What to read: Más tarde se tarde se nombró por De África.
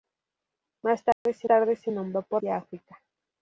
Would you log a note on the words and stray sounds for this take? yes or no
yes